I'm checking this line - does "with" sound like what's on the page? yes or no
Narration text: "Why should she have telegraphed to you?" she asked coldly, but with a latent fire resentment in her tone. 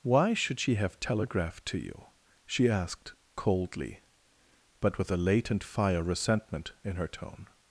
yes